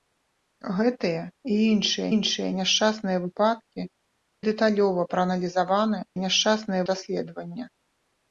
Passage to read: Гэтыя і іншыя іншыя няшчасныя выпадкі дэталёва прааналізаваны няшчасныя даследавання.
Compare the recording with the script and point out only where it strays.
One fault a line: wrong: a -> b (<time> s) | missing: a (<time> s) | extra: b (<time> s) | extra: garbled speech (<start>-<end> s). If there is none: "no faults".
no faults